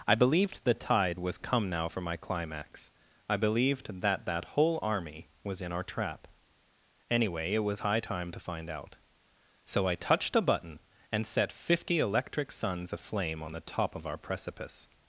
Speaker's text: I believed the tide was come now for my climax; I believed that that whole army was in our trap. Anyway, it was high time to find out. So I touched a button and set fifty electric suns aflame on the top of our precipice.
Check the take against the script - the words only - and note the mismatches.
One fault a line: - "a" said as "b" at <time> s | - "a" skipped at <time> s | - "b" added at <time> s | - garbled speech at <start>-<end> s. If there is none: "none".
none